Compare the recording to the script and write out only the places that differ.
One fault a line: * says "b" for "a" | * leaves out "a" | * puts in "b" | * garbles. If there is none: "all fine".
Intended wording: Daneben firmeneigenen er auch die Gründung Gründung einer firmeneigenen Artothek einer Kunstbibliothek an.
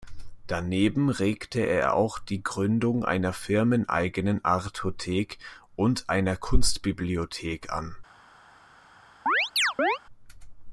* says "regte" for "firmeneigenen"
* leaves out "Gründung"
* puts in "und"